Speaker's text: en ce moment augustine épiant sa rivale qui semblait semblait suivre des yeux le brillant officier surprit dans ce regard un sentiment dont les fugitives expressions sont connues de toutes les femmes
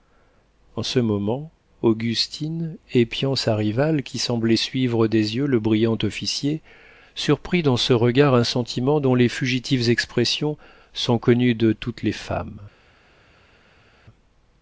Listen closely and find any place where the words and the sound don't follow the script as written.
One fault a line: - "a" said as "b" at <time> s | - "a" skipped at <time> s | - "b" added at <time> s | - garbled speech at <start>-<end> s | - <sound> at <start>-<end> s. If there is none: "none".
- "semblait" skipped at 4.6 s